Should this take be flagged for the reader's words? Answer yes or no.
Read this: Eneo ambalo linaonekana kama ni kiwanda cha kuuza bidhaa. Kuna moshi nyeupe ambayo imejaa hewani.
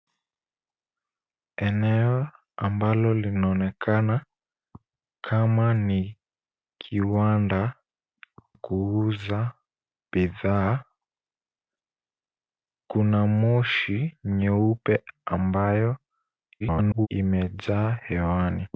yes